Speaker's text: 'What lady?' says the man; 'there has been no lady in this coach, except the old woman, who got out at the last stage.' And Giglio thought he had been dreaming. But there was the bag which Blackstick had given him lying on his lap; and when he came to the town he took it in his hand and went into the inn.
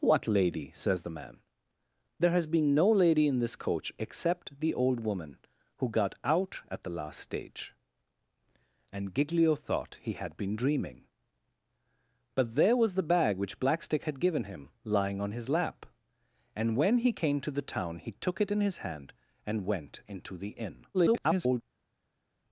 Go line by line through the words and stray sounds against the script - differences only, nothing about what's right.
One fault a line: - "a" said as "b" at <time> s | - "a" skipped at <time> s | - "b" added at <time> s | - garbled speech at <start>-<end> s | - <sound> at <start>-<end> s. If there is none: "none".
- garbled speech at 20.9-21.6 s